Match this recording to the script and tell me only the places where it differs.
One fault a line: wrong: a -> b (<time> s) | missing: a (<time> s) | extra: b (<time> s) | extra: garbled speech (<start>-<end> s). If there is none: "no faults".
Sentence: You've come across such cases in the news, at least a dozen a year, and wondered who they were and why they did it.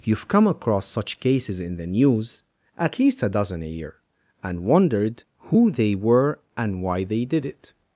no faults